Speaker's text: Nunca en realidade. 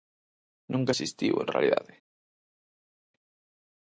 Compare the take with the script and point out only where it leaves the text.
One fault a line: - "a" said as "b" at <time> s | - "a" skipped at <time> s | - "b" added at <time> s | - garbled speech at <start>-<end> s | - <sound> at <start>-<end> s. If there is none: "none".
- "existiu" added at 0.9 s